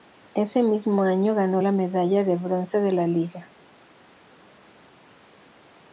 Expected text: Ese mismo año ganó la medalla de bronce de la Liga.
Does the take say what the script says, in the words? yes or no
yes